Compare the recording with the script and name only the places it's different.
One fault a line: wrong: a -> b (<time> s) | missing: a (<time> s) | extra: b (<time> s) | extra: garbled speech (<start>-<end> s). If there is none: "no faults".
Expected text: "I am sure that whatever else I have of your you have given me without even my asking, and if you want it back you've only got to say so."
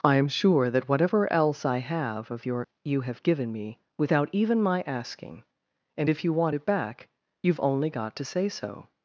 no faults